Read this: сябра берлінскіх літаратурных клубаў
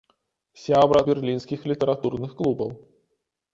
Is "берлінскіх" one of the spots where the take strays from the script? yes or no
no